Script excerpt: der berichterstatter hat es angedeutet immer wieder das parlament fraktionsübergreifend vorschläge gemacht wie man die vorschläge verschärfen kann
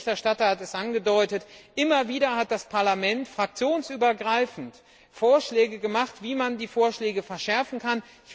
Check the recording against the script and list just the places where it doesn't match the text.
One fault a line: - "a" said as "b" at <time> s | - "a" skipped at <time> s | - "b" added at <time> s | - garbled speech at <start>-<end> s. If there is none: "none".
- "hat" added at 2.4 s